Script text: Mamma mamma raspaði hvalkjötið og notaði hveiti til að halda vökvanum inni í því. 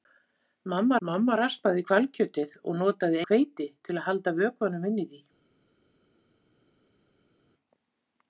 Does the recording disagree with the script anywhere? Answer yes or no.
no